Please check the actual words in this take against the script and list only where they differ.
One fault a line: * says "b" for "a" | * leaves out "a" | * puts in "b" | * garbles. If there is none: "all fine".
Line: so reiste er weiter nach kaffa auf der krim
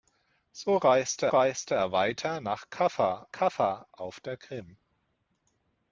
* puts in "reiste"
* puts in "kaffa"